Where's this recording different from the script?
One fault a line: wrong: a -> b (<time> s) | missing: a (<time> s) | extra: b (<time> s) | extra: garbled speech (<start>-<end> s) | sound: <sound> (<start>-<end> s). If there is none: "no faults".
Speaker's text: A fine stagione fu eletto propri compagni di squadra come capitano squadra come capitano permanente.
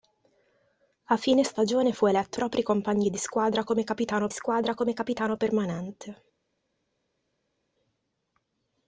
no faults